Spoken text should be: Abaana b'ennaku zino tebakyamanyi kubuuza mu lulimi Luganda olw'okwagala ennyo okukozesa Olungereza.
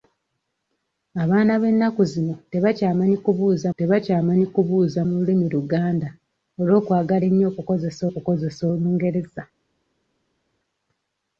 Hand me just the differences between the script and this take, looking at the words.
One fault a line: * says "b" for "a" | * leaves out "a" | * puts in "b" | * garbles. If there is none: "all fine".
* puts in "tebakyamanyi kubuuza"
* puts in "okukozesa"